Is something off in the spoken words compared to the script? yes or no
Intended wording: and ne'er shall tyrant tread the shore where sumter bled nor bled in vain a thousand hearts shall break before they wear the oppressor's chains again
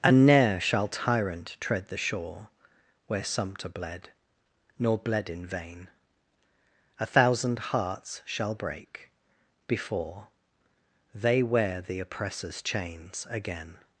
no